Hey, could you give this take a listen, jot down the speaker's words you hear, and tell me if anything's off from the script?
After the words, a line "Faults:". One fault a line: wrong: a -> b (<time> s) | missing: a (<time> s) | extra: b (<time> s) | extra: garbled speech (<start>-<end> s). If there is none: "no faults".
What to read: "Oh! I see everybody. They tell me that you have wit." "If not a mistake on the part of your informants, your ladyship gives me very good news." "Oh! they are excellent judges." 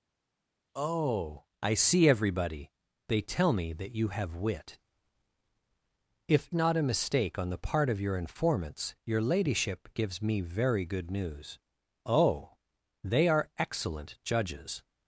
"Oh! I see everybody. They tell me that you have wit." "If not a mistake on the part of your informants, your ladyship gives me very good news." "Oh! they are excellent judges."
Faults:
no faults